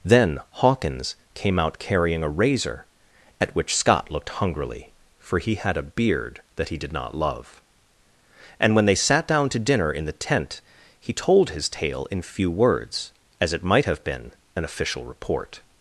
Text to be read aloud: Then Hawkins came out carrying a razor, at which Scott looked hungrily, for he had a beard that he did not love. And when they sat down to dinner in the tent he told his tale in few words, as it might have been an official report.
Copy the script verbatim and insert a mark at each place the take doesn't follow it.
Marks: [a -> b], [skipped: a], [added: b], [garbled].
Then Hawkins came out carrying a razor, at which Scott looked hungrily, for he had a beard that he did not love. And when they sat down to dinner in the tent he told his tale in few words, as it might have been an official report.